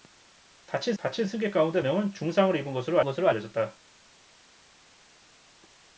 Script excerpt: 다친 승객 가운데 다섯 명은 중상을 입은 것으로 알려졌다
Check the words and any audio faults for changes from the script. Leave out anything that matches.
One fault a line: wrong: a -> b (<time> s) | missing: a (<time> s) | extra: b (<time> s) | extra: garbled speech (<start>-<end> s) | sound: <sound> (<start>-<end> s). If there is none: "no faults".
extra: 다친 (1.0 s)
missing: 다섯 (1.8 s)
extra: 것으로 (3.0 s)